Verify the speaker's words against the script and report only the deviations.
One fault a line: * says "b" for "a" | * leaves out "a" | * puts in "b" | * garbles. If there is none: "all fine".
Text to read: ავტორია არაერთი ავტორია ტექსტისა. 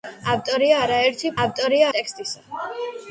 all fine